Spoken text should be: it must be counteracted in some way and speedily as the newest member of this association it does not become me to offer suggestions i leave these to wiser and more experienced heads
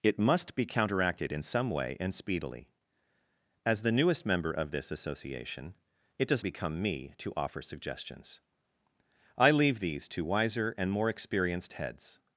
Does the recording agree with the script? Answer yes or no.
no